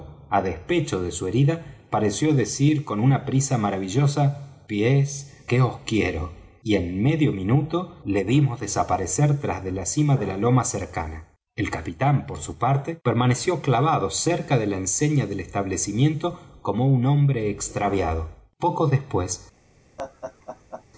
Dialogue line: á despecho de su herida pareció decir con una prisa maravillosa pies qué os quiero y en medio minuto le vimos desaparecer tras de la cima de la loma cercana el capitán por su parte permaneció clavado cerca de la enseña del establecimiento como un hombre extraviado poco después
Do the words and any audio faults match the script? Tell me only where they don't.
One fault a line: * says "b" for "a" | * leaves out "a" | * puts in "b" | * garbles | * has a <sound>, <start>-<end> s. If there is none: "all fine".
* has a laugh, 20.0-20.9 s